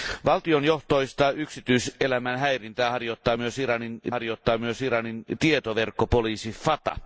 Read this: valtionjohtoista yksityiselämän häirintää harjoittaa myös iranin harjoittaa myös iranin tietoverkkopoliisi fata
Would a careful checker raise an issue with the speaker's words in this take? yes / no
no